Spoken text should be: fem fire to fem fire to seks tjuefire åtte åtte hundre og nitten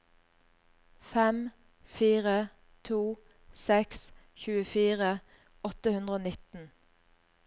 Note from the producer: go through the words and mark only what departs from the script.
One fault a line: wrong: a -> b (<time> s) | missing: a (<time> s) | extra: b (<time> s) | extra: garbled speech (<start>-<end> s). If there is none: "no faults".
missing: fem fire to (3.0 s)
missing: åtte (5.9 s)